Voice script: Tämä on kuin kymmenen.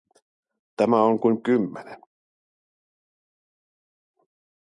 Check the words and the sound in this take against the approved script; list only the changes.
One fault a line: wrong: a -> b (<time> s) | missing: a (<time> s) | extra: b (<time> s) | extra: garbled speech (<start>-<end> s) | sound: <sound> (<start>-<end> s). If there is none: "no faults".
no faults